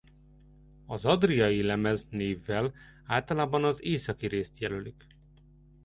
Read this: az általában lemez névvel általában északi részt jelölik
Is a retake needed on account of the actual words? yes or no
yes